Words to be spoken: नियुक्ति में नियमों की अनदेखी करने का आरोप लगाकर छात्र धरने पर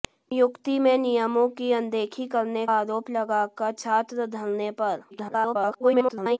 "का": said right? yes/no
no